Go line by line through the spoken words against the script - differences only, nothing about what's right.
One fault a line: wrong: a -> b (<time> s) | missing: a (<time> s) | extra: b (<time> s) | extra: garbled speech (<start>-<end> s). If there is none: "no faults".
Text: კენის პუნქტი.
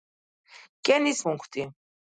no faults